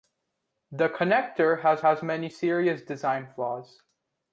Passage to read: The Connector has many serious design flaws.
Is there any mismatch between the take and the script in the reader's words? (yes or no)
yes